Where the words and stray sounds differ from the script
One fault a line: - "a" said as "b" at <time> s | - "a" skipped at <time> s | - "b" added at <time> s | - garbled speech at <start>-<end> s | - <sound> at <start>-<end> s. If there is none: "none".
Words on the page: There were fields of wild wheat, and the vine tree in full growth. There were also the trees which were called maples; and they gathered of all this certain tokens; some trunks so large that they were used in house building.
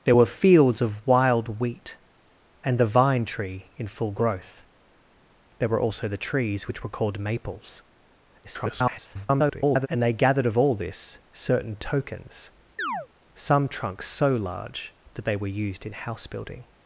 - garbled speech at 8.4-9.9 s
- chirp at 12.8-13.1 s